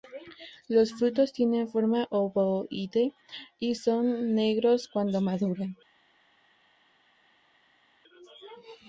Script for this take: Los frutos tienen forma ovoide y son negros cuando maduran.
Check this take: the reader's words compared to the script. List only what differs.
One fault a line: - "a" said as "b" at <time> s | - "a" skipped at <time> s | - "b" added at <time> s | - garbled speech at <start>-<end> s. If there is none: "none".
none